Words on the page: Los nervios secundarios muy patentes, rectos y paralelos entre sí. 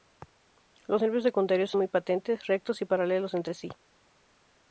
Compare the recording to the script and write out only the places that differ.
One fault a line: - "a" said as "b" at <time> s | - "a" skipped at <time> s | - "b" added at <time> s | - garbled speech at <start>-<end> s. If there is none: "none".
none